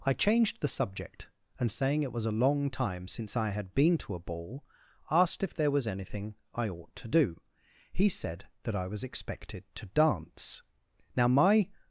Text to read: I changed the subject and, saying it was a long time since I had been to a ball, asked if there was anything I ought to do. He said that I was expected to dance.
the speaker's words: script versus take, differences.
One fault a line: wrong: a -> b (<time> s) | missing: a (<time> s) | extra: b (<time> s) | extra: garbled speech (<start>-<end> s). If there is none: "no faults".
extra: Now my (11.2 s)